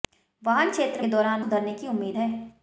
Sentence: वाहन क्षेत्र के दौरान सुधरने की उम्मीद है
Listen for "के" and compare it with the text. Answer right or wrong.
right